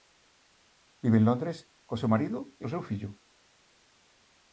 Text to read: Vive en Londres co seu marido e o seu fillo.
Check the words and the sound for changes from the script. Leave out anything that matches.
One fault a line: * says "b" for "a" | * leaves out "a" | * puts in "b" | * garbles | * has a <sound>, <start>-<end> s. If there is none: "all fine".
all fine